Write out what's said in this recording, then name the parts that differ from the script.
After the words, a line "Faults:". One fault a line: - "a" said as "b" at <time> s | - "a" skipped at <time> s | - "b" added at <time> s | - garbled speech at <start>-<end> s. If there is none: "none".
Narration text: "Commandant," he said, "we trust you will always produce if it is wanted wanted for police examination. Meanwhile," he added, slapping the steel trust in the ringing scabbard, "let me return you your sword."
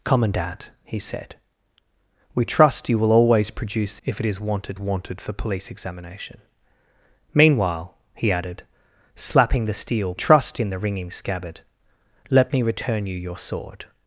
"Commandant," he said, "we trust you will always produce if it is wanted wanted for police examination. Meanwhile," he added, slapping the steel trust in the ringing scabbard, "let me return you your sword."
Faults:
none